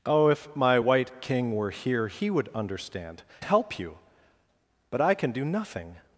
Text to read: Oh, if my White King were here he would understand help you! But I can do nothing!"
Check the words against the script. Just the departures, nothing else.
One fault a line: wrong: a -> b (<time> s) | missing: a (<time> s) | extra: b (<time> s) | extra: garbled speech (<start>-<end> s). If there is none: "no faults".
no faults